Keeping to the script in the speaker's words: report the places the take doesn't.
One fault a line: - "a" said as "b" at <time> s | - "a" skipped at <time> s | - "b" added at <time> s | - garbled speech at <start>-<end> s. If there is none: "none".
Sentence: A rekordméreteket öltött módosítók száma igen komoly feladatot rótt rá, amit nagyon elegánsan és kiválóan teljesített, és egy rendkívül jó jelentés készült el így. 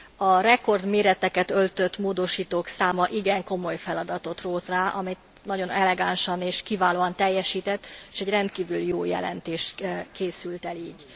none